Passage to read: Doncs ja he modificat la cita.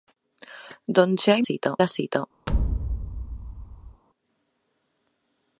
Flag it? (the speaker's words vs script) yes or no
yes